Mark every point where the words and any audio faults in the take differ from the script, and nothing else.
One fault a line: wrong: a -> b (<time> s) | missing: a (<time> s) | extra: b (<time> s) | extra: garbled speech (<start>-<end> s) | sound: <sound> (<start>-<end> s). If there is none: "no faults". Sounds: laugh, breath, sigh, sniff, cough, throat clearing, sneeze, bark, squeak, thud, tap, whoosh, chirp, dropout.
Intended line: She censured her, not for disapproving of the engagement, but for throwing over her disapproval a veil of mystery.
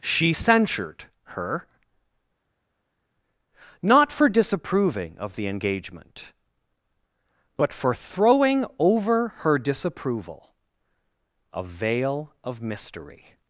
no faults